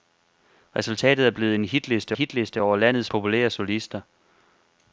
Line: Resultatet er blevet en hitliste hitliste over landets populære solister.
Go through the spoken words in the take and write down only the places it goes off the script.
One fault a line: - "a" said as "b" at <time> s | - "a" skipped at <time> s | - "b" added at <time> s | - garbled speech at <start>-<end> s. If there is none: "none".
none